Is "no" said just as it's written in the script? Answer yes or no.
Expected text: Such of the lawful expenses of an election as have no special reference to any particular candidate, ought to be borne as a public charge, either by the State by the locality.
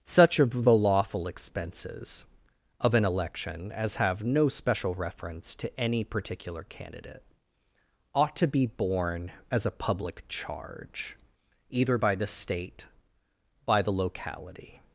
yes